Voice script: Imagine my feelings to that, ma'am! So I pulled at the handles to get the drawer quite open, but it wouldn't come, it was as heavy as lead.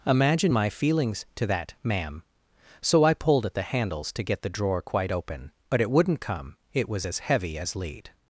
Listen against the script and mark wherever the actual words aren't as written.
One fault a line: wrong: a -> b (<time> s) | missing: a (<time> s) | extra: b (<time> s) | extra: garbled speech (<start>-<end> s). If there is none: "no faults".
no faults